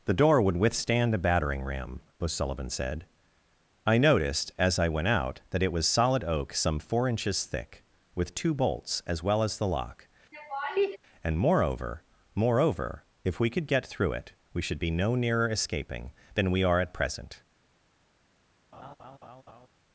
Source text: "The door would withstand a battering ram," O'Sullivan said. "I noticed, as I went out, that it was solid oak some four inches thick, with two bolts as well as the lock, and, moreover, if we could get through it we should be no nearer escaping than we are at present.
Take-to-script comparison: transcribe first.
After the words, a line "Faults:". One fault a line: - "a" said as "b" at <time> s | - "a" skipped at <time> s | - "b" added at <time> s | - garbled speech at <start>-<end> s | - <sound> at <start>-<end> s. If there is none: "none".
"The door would withstand a battering ram," O'Sullivan said. "I noticed, as I went out, that it was solid oak some four inches thick, with two bolts as well as the lock, and, moreover moreover, if we could get through it we should be no nearer escaping than we are at present.
Faults:
- laugh at 10.3-11.0 s
- "moreover" added at 12.3 s
- laugh at 18.7-19.7 s